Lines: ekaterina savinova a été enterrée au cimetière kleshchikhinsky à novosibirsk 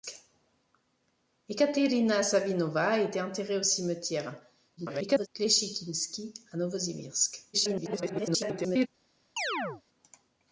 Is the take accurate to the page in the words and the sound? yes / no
no